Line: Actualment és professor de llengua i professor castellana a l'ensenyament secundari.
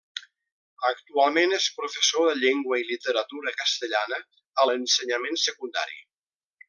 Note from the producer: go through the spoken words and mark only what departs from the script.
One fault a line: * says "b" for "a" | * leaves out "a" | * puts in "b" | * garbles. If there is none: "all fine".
* says "literatura" for "professor"